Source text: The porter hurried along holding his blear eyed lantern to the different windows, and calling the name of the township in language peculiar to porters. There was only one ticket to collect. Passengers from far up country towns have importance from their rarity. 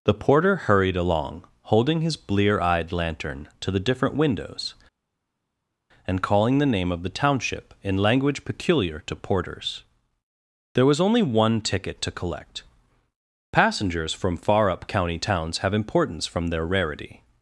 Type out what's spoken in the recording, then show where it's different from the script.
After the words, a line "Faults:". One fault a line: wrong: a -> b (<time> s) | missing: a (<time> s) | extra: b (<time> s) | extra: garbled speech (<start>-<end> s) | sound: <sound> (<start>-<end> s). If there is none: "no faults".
The porter hurried along holding his blear eyed lantern to the different windows, and calling the name of the township in language peculiar to porters. There was only one ticket to collect. Passengers from far up county towns have importance from their rarity.
Faults:
wrong: country -> county (14.9 s)